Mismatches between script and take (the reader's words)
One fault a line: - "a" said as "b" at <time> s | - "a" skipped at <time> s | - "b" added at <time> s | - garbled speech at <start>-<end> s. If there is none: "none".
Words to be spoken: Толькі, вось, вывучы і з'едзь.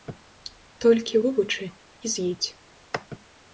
- "вось" skipped at 1.2 s